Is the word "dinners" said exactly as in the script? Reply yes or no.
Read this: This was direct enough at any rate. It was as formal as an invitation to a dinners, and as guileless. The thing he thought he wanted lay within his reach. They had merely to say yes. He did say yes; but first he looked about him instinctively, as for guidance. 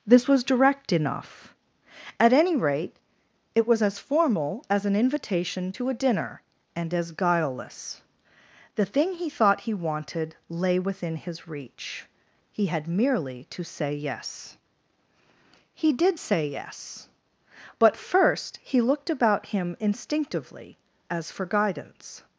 no